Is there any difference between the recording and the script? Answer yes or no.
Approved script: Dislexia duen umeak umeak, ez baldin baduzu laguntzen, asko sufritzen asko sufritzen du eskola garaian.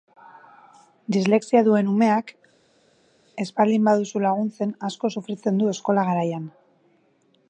yes